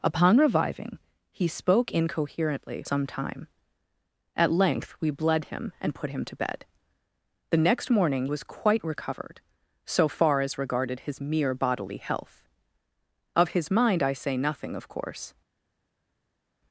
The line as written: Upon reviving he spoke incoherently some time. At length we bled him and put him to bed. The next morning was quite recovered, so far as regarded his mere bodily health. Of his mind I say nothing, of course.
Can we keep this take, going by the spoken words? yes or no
yes